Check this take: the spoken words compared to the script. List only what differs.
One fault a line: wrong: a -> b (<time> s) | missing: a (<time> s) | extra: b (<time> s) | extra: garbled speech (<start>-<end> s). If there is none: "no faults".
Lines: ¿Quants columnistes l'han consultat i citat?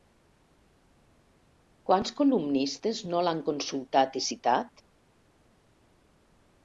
extra: no (3.1 s)